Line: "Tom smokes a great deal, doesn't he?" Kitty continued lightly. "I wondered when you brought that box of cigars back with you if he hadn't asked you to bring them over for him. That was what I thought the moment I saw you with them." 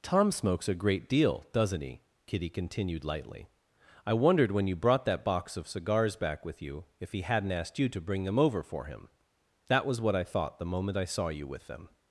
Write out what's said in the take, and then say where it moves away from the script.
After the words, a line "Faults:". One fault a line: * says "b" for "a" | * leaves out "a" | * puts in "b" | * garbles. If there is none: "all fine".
"Tom smokes a great deal, doesn't he?" Kitty continued lightly. "I wondered when you brought that box of cigars back with you if he hadn't asked you to bring them over for him. That was what I thought the moment I saw you with them."
Faults:
all fine